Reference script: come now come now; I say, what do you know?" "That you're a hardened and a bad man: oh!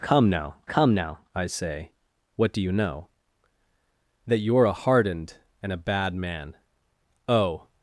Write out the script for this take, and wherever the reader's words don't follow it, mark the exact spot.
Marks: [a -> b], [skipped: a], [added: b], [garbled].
come now come now; I say, what do you know?" "That you're a hardened and a bad man: oh!